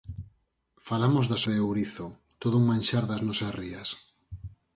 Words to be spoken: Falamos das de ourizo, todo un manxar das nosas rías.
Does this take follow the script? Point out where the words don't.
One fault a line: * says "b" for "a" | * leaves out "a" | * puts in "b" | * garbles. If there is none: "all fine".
all fine